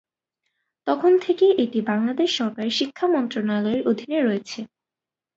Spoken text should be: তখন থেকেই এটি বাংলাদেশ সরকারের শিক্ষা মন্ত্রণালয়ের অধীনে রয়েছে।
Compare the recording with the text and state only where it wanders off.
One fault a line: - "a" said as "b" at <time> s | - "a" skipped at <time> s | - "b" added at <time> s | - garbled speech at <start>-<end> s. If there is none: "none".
none